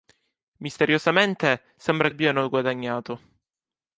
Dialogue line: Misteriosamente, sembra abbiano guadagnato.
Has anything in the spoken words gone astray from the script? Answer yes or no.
no